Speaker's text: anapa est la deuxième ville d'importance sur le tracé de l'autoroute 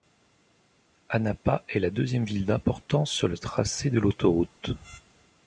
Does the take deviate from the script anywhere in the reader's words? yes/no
no